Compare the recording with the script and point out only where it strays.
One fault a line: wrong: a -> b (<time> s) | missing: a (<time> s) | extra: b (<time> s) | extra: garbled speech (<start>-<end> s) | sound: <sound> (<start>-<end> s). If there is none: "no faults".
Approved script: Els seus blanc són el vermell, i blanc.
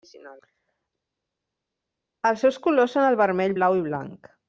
wrong: blanc -> colors (2.7 s)
extra: blau (3.6 s)